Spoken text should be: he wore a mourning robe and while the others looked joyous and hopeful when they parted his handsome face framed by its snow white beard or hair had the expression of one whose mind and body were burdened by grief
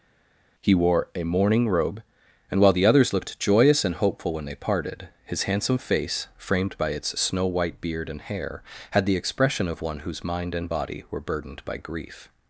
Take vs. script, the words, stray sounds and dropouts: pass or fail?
fail